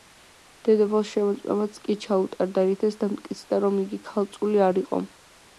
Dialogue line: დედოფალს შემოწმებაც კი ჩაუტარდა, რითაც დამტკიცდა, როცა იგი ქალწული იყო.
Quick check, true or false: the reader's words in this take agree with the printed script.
false